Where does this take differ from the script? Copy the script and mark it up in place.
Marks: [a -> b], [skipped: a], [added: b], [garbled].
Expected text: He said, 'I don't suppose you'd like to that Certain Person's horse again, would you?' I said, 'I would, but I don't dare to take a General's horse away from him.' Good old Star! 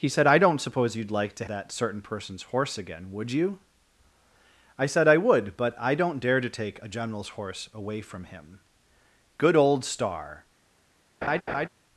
He said, 'I don't suppose you'd like to that Certain Person's horse again, would you?' I said, 'I would, but I don't dare to take a General's horse away from him.' Good old Star!